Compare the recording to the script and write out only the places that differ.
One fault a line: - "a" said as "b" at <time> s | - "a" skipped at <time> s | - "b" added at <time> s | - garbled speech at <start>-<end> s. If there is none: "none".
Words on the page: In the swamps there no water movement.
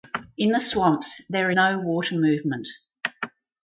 none